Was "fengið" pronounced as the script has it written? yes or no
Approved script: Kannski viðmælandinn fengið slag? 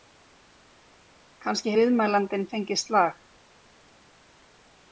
yes